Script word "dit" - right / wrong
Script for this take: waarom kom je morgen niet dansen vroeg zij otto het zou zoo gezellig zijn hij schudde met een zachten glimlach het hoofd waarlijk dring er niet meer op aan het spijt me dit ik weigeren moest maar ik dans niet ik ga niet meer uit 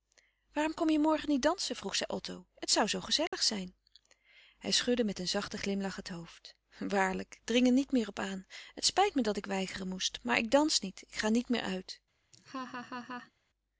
wrong